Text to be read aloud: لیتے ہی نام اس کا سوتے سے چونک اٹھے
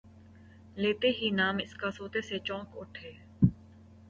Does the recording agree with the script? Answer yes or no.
yes